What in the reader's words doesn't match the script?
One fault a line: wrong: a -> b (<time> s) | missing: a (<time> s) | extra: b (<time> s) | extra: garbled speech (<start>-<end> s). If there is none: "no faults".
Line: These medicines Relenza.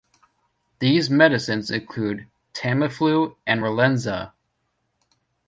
extra: include Tamiflu and (1.7 s)